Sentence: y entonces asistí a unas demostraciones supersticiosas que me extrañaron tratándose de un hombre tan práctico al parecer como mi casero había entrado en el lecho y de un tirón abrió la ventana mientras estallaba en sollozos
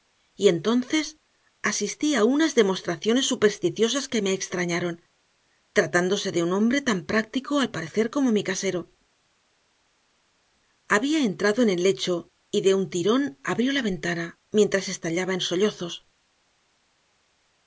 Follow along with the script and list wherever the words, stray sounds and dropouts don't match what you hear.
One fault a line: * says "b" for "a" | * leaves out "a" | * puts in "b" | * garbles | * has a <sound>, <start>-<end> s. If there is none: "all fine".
all fine